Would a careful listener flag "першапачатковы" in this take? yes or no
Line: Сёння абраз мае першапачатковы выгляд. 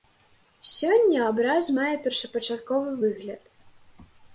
no